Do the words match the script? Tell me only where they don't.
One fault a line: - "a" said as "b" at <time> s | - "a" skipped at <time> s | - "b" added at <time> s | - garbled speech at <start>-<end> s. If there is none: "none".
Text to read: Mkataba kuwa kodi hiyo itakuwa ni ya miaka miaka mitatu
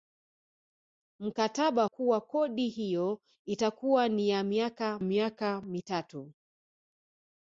none